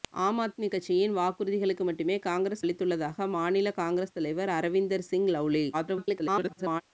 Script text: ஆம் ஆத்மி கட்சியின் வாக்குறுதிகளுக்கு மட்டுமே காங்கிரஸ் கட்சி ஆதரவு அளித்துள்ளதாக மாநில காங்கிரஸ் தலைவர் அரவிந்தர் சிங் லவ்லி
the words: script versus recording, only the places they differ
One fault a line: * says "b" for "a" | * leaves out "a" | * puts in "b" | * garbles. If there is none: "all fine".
* leaves out "கட்சி ஆதரவு"
* garbles